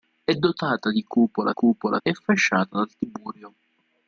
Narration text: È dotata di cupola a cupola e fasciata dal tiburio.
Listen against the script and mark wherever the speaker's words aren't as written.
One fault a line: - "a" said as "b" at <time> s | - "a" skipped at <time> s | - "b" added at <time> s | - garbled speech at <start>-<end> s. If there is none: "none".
none